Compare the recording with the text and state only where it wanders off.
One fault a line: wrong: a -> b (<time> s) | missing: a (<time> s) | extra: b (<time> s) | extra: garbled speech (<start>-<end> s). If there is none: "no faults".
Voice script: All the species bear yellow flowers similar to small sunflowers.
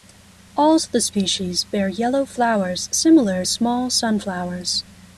missing: to (3.5 s)